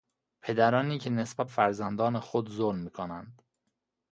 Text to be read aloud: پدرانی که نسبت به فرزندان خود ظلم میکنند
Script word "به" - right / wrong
wrong